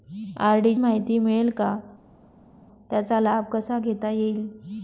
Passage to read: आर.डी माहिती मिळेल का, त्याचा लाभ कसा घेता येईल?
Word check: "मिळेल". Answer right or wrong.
right